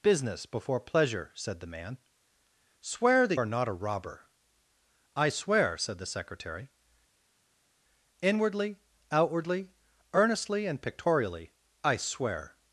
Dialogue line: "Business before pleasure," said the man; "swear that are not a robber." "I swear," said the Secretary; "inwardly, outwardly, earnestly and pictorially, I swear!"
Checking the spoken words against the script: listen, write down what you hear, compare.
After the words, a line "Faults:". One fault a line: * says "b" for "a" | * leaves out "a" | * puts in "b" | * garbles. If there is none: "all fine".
"Business before pleasure," said the man; "swear that are not a robber." "I swear," said the Secretary; "inwardly, outwardly, earnestly and pictorially, I swear!"
Faults:
all fine